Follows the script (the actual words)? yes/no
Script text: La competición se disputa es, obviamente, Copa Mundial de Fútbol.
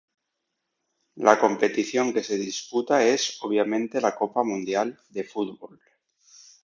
no